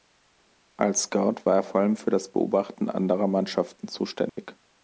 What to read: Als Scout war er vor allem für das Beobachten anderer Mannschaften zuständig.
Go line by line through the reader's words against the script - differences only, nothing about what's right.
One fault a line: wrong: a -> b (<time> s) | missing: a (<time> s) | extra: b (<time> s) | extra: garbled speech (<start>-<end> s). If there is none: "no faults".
no faults